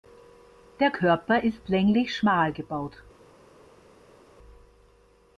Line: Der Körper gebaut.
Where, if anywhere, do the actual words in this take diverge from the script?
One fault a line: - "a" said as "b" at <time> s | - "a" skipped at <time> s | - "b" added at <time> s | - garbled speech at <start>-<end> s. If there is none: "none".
- "ist länglich schmal" added at 1.4 s